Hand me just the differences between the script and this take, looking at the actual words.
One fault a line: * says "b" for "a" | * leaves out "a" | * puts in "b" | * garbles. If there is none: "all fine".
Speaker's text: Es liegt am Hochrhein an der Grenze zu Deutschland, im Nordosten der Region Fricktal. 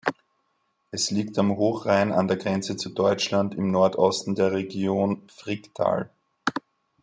all fine